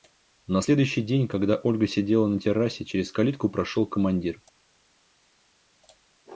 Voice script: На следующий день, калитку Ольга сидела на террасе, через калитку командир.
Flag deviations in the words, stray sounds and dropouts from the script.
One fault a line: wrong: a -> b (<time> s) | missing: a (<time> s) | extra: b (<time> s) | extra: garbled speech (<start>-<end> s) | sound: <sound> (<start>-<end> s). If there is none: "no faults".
wrong: калитку -> когда (1.3 s)
extra: прошел (3.5 s)